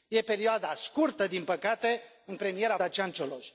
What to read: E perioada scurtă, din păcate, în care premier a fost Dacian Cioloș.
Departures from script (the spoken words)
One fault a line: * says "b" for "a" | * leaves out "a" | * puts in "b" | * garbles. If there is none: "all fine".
* leaves out "care"
* leaves out "fost"